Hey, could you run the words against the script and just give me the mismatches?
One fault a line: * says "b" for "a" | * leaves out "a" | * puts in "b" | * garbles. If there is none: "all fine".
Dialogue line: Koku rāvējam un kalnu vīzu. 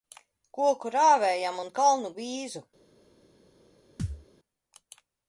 all fine